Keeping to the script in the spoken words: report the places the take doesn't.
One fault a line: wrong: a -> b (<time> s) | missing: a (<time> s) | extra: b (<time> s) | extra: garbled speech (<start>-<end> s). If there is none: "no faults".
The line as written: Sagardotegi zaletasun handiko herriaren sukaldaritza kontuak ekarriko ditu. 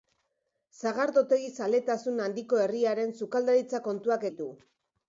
missing: ekarriko (4.3 s)